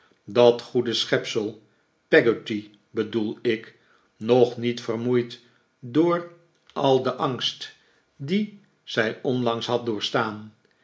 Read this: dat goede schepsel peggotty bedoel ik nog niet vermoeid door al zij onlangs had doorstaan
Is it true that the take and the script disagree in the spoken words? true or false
true